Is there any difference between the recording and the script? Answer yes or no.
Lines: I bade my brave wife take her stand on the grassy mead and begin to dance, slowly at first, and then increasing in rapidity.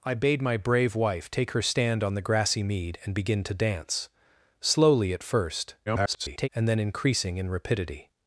yes